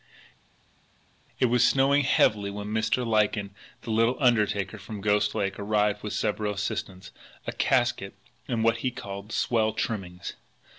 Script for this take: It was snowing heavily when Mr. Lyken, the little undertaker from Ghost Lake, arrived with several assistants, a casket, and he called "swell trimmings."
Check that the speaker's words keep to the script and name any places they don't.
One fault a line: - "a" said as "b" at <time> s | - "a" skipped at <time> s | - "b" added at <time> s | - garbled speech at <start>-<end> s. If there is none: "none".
- "what" added at 8.6 s